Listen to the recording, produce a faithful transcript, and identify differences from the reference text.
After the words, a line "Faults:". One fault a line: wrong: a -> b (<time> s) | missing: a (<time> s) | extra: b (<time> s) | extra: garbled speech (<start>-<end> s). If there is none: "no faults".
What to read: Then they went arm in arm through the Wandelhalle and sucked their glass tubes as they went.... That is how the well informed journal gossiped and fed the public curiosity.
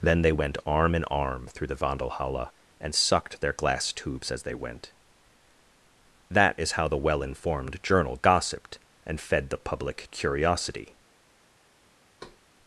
Then they went arm in arm through the Wandelhalle and sucked their glass tubes as they went.... That is how the well informed journal gossiped and fed the public curiosity.
Faults:
no faults